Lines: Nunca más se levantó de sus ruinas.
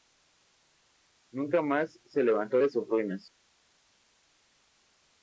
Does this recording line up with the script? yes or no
yes